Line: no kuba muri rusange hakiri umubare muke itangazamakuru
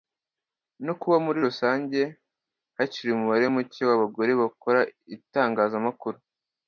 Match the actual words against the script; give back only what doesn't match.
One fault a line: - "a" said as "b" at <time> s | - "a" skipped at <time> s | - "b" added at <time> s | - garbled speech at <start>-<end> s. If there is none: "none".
- "w'abagore bakora" added at 3.9 s